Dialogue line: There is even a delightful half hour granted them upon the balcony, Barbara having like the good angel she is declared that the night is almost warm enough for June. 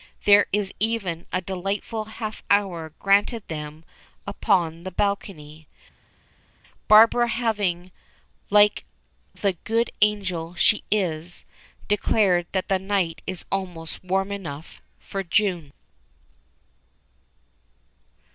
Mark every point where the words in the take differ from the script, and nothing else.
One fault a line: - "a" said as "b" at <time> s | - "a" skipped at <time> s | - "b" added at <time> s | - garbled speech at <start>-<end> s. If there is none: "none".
none